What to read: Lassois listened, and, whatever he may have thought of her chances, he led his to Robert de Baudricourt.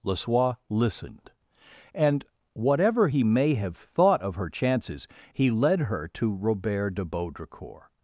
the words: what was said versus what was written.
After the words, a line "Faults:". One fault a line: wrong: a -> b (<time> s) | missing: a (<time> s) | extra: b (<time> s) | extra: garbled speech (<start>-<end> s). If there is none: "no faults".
Lassois listened, and, whatever he may have thought of her chances, he led her to Robert de Baudricourt.
Faults:
wrong: his -> her (5.8 s)